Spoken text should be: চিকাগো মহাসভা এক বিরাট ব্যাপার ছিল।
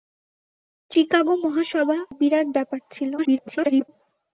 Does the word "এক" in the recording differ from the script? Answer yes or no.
yes